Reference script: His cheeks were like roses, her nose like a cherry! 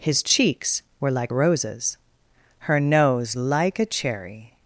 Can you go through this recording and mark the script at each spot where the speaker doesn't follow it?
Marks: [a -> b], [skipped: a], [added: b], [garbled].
His cheeks were like roses, her nose like a cherry!